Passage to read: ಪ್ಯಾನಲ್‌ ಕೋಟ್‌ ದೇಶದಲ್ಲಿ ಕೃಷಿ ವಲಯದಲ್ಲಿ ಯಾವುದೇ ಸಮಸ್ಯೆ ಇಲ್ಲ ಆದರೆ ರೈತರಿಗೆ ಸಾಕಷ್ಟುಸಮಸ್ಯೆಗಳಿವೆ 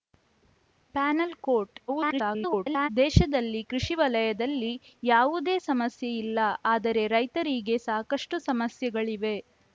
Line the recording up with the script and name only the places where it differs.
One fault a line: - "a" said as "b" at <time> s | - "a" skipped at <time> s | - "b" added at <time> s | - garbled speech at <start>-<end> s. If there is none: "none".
- garbled speech at 1.9-2.9 s